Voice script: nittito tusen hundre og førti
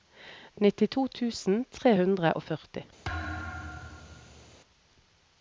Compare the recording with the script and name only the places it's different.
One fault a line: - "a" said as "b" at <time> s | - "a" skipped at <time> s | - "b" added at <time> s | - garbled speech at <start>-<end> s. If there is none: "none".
- "tre" added at 1.8 s